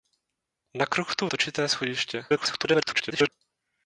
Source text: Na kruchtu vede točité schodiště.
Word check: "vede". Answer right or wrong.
wrong